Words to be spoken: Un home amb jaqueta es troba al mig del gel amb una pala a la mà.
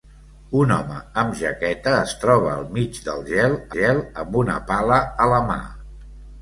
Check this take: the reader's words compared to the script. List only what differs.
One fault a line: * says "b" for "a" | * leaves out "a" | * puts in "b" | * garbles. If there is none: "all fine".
* puts in "gel"